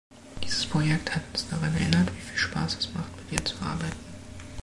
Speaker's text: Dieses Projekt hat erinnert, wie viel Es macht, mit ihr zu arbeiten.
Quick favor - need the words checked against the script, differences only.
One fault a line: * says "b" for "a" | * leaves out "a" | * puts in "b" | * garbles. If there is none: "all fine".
* puts in "uns daran"
* puts in "Spaß"